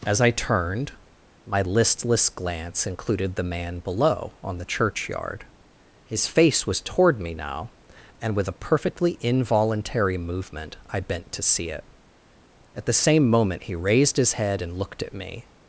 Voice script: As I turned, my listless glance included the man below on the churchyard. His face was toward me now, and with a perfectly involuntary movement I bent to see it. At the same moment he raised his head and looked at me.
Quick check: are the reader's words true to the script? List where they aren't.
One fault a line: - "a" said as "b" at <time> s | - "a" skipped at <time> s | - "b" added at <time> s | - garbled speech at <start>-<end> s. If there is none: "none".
none